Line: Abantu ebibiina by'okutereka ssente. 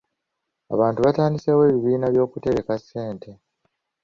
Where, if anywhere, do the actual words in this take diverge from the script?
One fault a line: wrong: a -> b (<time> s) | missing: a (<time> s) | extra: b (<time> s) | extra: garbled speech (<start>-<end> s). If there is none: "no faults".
extra: batandiseewo (1.1 s)